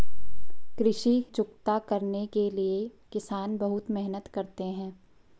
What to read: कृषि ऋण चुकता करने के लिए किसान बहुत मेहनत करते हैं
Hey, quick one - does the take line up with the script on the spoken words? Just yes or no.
no